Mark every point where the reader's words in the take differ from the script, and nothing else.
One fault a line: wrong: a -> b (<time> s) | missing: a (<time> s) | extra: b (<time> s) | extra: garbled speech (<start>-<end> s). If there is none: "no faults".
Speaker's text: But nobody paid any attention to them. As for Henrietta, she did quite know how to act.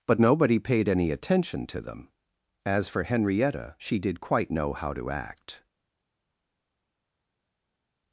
no faults